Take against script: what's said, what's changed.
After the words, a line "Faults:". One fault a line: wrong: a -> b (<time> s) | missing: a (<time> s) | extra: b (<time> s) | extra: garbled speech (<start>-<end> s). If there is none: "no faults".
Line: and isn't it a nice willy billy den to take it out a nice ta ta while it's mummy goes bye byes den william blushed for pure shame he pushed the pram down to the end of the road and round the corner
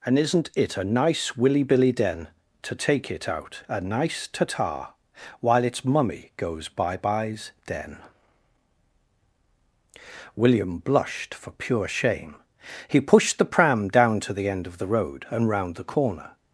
and isn't it a nice willy billy den to take it out a nice ta ta while it's mummy goes bye byes den william blushed for pure shame he pushed the pram down to the end of the road and round the corner
Faults:
no faults